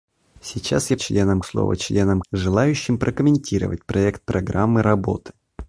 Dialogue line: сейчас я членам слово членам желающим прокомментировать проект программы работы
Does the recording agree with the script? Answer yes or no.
yes